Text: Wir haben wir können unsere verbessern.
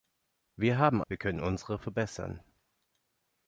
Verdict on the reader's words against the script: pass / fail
pass